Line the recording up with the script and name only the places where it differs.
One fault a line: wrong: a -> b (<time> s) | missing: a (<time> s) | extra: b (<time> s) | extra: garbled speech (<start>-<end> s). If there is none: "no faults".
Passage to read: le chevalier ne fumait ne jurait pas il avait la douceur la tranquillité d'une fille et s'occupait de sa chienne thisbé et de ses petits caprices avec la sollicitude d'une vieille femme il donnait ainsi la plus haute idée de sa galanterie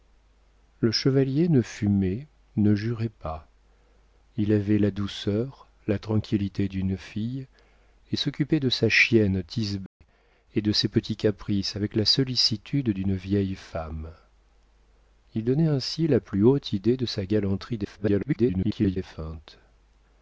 extra: garbled speech (17.8-19.0 s)